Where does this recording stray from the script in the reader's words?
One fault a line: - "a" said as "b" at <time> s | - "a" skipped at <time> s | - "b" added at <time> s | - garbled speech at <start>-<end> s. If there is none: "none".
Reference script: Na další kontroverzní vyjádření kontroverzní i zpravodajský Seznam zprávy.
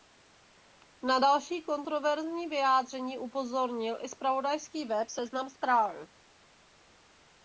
- "kontroverzní" said as "upozornil" at 3.2 s
- "web" added at 4.8 s